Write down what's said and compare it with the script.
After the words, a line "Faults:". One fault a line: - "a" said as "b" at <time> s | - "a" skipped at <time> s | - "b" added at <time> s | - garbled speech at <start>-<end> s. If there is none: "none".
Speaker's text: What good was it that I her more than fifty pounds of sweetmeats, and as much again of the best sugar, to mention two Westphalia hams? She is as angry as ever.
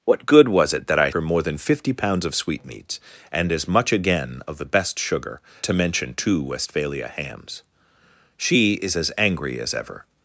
What good was it that I her more than fifty pounds of sweetmeats, and as much again of the best sugar, to mention two Westphalia hams? She is as angry as ever.
Faults:
none